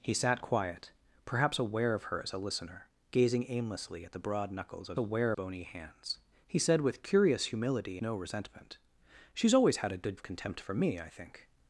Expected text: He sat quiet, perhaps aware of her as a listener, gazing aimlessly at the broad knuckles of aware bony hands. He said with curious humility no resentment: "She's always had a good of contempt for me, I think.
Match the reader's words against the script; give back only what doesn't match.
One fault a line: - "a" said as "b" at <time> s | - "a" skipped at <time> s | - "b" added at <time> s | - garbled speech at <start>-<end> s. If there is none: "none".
none